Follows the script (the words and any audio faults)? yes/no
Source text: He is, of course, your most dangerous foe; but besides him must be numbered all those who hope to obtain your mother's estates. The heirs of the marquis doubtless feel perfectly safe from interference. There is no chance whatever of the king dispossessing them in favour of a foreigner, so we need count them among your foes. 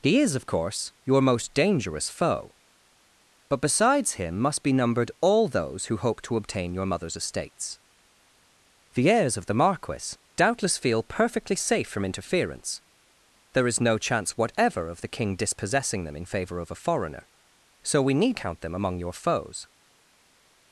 yes